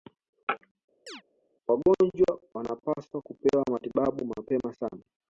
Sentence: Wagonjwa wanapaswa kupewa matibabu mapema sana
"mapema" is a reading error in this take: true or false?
false